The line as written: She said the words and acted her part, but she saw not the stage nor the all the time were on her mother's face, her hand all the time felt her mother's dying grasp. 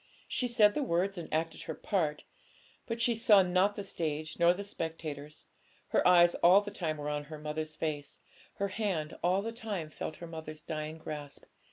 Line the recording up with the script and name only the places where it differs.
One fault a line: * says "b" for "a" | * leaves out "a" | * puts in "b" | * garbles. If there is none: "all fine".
* puts in "spectators her eyes"